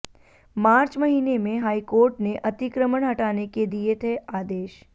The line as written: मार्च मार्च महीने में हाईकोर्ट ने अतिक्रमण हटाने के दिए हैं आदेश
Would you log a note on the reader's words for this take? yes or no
yes